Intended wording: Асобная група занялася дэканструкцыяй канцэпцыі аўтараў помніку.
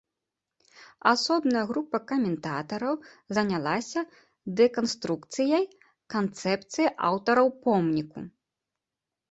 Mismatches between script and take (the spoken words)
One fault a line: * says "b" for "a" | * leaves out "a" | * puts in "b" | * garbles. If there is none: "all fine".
* puts in "каментатараў"